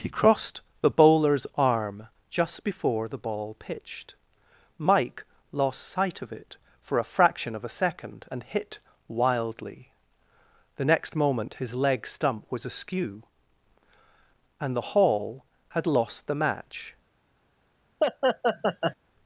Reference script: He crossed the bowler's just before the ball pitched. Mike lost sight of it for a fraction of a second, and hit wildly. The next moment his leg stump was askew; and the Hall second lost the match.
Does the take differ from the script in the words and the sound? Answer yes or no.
yes